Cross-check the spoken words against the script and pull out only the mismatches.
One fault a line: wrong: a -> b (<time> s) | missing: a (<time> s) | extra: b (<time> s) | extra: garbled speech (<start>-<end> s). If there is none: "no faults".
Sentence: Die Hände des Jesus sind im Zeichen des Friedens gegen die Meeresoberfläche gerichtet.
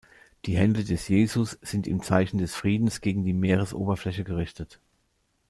no faults